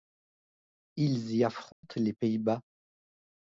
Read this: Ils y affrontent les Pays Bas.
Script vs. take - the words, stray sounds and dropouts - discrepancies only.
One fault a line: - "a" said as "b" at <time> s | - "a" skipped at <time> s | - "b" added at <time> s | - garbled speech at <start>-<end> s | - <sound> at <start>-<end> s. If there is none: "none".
- dropout at 1.7-1.8 s